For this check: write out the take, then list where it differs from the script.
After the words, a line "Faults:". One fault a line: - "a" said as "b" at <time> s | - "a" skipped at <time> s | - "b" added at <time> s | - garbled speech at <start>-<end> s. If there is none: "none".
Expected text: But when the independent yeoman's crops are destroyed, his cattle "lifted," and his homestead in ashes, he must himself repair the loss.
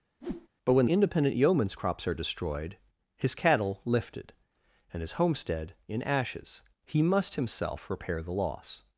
But when independent yeoman's crops are destroyed, his cattle "lifted," and his homestead in ashes, he must himself repair the loss.
Faults:
- "the" skipped at 0.9 s